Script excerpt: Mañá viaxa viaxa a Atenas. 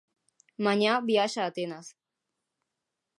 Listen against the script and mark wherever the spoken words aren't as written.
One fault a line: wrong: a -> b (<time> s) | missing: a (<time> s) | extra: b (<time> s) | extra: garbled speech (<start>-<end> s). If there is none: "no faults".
missing: viaxa (1.4 s)